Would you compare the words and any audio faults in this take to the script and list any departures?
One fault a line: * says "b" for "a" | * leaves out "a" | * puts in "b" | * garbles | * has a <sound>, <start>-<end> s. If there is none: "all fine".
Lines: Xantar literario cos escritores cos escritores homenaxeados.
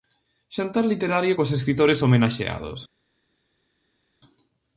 * leaves out "cos escritores"